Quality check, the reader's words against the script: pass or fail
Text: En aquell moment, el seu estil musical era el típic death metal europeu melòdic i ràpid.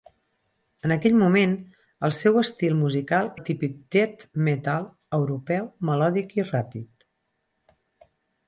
fail